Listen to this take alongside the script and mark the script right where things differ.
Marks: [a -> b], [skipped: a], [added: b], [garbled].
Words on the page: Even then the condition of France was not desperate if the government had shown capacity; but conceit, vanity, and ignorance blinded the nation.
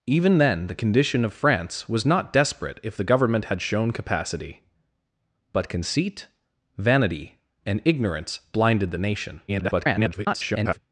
Even then the condition of France was not desperate if the government had shown capacity; but conceit, vanity, and ignorance blinded the nation. [garbled]